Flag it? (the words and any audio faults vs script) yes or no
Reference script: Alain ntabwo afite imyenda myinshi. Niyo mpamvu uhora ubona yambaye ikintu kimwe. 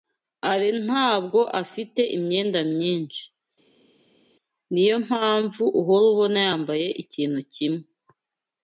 no